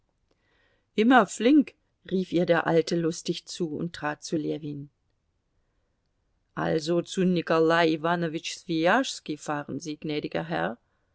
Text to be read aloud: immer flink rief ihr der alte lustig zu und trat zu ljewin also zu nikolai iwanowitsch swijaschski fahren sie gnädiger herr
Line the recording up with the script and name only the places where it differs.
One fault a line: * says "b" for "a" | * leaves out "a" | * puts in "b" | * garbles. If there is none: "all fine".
all fine